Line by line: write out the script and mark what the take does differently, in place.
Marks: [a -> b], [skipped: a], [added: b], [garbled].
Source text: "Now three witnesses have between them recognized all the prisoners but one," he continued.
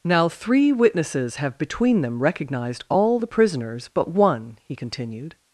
"Now three witnesses have between them recognized all the prisoners but one," he continued.